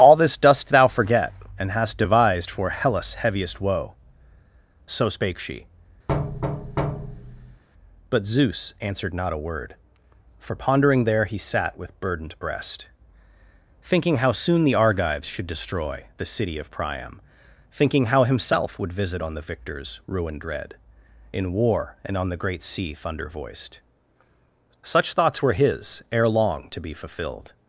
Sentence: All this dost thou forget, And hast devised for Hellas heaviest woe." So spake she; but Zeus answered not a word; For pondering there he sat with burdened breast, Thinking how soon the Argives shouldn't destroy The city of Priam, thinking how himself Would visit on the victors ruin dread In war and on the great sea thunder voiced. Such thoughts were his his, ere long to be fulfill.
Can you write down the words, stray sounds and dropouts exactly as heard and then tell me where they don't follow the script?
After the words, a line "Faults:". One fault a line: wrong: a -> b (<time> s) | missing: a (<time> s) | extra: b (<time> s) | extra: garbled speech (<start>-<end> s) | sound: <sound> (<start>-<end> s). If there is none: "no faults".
All this dost thou forget, And hast devised for Hellas heaviest woe." So spake she; but Zeus answered not a word; For pondering there he sat with burdened breast, Thinking how soon the Argives should destroy The city of Priam, thinking how himself Would visit on the victors ruin dread In war and on the great sea thunder voiced. Such thoughts were his, ere long to be fulfilled.
Faults:
sound: thud (6.1-7.6 s)
wrong: shouldn't -> should (15.3 s)
missing: his (26.0 s)
wrong: fulfill -> fulfilled (26.9 s)